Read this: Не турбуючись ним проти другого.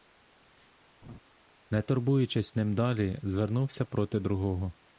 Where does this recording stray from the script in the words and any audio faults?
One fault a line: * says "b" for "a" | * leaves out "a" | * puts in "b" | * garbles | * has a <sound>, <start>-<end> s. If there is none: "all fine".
* has a laugh, 1.0-1.2 s
* puts in "далі звернувся"